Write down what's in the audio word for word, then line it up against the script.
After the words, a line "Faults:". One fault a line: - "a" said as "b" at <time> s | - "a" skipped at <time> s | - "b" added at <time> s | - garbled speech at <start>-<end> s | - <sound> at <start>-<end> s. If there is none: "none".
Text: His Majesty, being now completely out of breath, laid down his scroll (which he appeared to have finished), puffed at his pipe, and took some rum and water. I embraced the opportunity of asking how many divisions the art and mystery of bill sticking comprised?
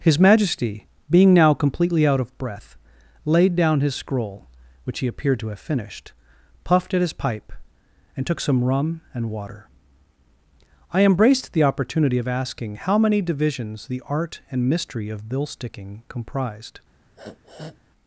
His Majesty, being now completely out of breath, laid down his scroll (which he appeared to have finished), puffed at his pipe, and took some rum and water. I embraced the opportunity of asking how many divisions the art and mystery of bill sticking comprised?
Faults:
- sniff at 17.2-17.8 s